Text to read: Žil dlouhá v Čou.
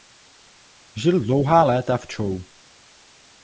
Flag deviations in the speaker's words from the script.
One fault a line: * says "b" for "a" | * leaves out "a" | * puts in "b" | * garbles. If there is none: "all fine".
* puts in "léta"